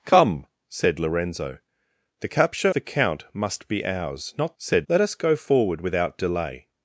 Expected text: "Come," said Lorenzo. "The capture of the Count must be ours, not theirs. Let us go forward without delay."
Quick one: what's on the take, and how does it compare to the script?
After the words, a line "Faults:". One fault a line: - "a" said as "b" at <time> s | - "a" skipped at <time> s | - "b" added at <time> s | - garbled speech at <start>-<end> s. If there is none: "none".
"Come," said Lorenzo. "The capture the Count must be ours, not said. Let us go forward without delay."
Faults:
- "of" skipped at 2.7 s
- "theirs" said as "said" at 4.6 s